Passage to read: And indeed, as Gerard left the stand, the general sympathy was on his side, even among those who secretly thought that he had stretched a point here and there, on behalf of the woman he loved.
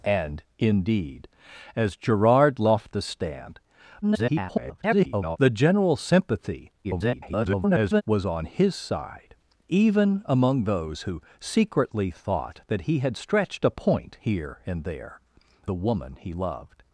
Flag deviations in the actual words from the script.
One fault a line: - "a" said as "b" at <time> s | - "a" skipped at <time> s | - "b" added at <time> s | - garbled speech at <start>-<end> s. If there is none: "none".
- garbled speech at 4.0-5.4 s
- garbled speech at 6.8-8.0 s
- "on behalf of" skipped at 15.2 s